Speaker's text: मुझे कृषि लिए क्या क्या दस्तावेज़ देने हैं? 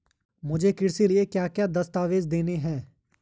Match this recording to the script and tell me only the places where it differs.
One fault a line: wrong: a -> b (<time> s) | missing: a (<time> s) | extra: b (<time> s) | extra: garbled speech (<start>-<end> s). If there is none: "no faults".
no faults